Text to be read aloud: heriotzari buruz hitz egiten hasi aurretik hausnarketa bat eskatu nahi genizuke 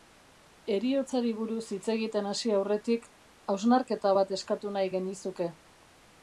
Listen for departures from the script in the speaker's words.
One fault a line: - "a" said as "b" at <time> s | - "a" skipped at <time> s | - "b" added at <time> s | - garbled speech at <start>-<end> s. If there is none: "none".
none